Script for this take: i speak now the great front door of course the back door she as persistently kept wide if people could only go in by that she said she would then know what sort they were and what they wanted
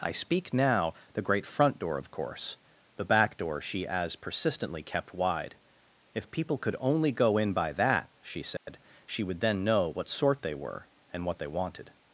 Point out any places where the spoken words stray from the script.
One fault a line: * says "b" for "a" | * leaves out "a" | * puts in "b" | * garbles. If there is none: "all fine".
all fine